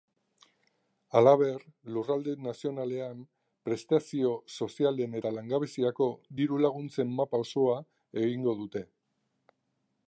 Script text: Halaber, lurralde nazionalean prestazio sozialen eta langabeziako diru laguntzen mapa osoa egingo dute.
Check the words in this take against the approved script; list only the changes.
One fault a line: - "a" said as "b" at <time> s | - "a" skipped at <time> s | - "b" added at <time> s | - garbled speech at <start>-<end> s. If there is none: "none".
none